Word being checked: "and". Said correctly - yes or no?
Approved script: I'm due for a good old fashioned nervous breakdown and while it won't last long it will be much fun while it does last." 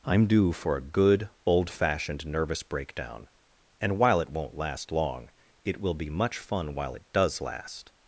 yes